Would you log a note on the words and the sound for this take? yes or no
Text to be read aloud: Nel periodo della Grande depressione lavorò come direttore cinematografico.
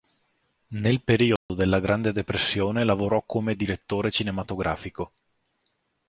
yes